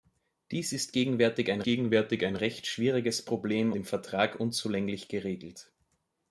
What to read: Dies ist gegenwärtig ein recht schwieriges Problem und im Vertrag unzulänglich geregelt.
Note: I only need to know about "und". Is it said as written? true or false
false